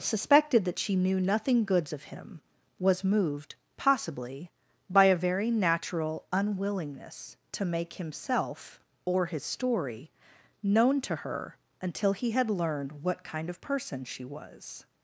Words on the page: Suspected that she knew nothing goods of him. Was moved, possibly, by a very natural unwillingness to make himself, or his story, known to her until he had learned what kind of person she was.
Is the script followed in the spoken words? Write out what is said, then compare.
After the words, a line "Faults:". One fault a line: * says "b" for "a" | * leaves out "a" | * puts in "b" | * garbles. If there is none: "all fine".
Suspected that she knew nothing goods of him. Was moved, possibly, by a very natural unwillingness to make himself, or his story, known to her until he had learned what kind of person she was.
Faults:
all fine